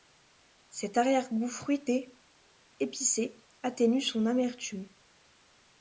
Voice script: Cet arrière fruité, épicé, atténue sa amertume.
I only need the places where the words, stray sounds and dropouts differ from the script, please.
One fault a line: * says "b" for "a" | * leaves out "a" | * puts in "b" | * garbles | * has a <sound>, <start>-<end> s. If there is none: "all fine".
* puts in "goût"
* says "son" for "sa"